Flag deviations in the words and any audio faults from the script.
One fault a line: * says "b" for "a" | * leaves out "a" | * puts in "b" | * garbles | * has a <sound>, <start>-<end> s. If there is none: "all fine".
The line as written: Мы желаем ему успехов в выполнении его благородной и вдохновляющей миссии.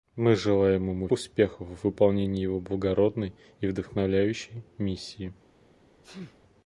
* has a sneeze, 6.0-6.4 s